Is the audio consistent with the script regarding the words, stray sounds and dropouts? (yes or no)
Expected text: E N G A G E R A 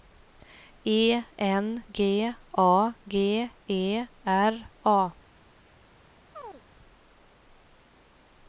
no